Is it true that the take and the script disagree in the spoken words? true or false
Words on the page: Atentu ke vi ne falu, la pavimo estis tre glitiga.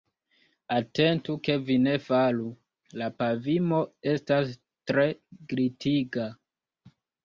true